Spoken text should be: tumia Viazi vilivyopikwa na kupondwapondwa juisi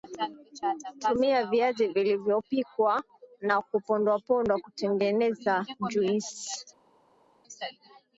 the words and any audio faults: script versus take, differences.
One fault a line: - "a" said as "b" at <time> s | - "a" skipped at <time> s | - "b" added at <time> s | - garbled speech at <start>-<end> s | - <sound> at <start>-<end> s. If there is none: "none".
- "kutengeneza" added at 4.6 s